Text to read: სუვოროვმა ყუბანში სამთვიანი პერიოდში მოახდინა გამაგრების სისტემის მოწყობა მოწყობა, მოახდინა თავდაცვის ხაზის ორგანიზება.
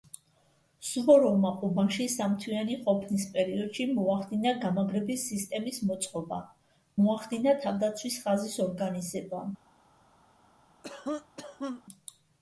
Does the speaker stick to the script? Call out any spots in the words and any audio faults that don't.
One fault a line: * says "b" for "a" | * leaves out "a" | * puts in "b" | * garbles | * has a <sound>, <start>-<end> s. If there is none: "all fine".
* puts in "ყოფნის"
* leaves out "მოწყობა"
* has a cough, 10.8-11.8 s